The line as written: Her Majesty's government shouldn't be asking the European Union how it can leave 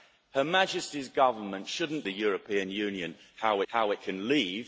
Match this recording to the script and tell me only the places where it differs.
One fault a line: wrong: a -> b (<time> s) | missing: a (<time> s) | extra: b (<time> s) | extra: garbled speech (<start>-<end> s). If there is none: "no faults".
missing: be asking (2.0 s)
extra: how (3.7 s)